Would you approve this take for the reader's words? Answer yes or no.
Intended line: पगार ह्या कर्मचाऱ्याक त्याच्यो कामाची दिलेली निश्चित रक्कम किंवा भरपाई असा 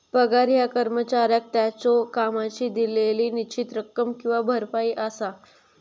yes